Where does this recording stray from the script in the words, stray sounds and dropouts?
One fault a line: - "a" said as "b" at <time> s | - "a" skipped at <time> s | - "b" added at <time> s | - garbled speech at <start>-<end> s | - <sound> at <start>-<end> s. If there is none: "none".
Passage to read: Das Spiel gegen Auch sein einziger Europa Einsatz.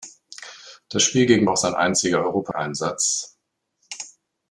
none